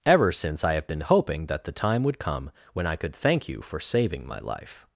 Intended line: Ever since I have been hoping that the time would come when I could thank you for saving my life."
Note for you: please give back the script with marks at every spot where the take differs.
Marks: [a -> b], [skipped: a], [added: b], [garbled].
Ever since I have been hoping that the time would come when I could thank you for saving my life."